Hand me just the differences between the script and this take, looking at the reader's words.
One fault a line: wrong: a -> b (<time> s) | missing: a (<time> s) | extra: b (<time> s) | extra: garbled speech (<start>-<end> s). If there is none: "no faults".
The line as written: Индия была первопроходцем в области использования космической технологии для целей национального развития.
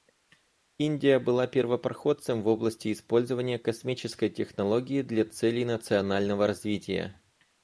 no faults